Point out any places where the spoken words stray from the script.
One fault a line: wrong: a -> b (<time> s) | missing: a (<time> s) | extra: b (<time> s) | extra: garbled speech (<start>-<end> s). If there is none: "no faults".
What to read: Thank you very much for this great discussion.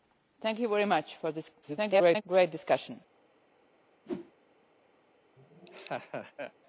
extra: garbled speech (1.6-2.2 s)